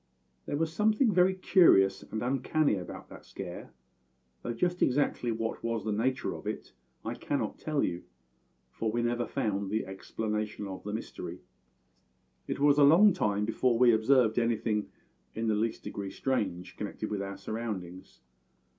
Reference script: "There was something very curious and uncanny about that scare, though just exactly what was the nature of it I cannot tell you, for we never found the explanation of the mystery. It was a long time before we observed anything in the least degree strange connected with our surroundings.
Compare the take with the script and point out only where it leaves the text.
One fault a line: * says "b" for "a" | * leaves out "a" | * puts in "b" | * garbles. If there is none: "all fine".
all fine